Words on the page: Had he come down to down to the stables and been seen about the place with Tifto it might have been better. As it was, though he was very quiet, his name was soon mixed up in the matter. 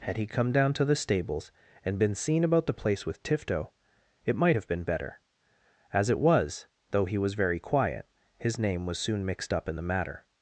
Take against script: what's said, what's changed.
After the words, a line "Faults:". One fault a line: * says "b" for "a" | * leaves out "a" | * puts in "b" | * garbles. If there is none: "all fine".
Had he come down to the stables and been seen about the place with Tifto it might have been better. As it was, though he was very quiet, his name was soon mixed up in the matter.
Faults:
* leaves out "down to"